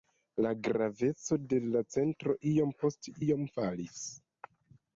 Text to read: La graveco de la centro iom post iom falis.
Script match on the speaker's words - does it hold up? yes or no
yes